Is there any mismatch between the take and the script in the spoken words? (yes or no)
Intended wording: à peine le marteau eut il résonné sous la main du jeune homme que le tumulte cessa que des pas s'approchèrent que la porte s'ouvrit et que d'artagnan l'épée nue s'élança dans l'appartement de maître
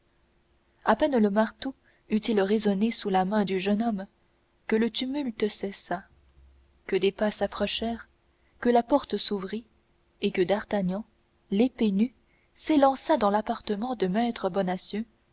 no